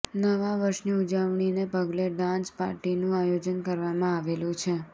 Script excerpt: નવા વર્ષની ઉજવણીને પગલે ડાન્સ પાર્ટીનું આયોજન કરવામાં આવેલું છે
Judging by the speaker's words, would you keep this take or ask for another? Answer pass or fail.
pass